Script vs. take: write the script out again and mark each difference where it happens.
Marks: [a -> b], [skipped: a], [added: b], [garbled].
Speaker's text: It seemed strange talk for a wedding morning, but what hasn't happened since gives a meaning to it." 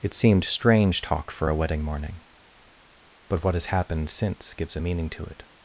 It seemed strange talk for a wedding morning, but what [hasn't -> has] happened since gives a meaning to it."